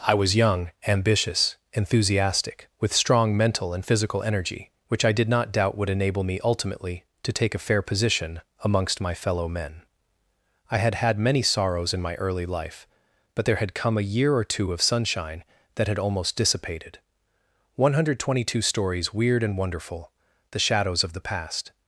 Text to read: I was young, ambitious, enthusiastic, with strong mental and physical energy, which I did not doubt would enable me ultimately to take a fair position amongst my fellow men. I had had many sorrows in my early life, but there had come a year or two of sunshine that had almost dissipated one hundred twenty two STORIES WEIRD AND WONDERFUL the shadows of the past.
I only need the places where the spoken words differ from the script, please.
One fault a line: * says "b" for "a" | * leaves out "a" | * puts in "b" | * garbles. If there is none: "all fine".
all fine